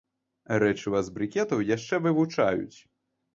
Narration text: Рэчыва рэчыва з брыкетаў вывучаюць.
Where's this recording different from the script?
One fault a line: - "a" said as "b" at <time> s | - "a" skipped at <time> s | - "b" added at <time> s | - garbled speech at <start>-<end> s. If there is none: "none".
- "рэчыва" skipped at 1.0 s
- "яшчэ" added at 1.8 s